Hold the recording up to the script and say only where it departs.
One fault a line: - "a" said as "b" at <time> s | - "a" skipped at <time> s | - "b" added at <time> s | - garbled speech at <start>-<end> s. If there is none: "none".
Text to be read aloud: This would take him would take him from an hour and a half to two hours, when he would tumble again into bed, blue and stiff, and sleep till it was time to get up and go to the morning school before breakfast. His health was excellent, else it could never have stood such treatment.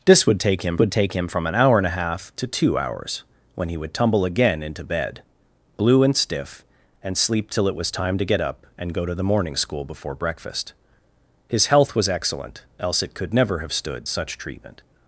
none